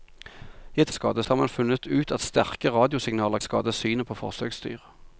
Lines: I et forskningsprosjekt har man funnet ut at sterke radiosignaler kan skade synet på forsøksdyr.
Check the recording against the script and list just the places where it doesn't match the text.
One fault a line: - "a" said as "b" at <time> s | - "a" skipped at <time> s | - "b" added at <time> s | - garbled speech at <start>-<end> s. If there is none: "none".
- "forskningsprosjekt" said as "skade" at 0.9 s
- "kan" skipped at 3.4 s